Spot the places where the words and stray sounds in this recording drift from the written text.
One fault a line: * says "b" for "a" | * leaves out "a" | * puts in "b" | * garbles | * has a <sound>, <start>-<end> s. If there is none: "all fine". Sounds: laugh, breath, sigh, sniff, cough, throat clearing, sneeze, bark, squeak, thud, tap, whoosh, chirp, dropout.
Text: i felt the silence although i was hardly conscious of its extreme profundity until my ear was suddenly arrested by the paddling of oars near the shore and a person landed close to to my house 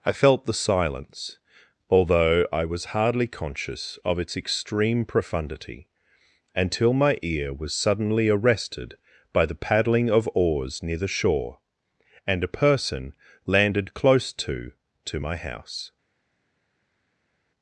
all fine